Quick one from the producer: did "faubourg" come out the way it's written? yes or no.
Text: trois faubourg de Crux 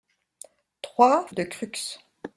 no